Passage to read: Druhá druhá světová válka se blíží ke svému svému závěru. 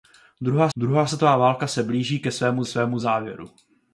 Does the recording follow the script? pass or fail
pass